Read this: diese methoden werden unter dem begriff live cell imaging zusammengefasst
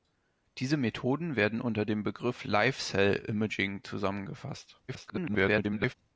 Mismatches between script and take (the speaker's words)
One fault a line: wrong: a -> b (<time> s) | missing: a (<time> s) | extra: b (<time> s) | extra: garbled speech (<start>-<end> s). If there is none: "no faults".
extra: garbled speech (4.9-5.9 s)